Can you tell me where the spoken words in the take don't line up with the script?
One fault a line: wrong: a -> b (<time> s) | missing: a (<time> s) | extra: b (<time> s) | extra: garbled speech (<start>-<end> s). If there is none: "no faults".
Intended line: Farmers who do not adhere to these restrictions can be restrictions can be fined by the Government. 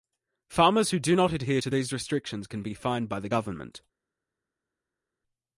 missing: restrictions can be (2.7 s)